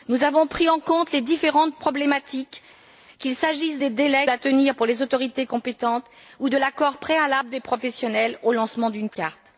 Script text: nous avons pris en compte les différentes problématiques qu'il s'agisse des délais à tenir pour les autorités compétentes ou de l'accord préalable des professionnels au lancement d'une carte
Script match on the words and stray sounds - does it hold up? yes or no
yes